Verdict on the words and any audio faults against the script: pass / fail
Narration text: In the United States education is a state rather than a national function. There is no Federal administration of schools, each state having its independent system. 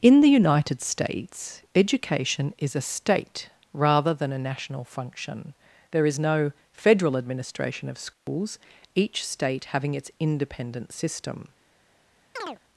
fail